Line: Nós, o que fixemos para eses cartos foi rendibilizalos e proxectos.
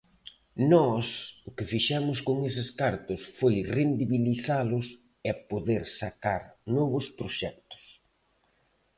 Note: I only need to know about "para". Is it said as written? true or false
false